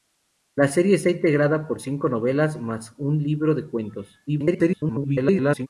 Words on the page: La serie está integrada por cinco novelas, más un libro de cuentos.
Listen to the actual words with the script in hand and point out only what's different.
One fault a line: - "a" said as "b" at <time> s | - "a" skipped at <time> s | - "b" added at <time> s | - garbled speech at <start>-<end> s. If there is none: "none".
- garbled speech at 4.3-5.7 s